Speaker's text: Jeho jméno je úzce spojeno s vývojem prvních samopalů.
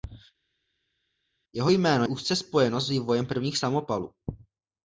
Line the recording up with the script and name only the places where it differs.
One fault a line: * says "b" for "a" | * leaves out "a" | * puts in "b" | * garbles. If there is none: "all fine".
* leaves out "je"